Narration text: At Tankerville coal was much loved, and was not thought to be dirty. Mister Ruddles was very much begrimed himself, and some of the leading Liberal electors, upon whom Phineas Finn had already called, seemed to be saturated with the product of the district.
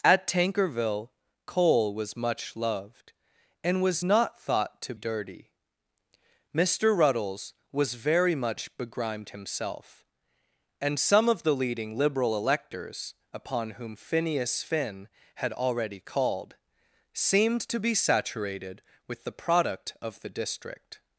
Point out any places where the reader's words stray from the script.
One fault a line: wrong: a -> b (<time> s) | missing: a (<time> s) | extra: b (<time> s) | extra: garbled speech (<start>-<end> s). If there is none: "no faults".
missing: be (4.9 s)